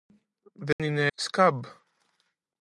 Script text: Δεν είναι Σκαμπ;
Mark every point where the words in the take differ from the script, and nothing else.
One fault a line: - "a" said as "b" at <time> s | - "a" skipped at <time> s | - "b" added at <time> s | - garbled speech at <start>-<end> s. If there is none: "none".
none